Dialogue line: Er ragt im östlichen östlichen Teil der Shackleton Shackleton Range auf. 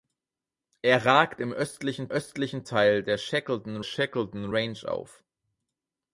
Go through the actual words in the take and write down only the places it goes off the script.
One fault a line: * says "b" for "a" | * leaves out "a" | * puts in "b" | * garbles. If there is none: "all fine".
all fine